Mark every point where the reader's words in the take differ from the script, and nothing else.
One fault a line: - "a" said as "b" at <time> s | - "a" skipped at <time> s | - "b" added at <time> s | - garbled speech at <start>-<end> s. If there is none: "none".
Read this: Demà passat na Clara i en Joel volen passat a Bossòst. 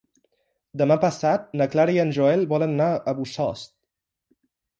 - "passat" said as "anar" at 2.8 s